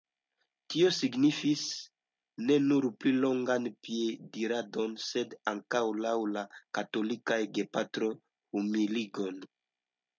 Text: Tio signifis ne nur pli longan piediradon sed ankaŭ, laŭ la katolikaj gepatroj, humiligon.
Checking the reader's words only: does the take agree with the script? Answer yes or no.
yes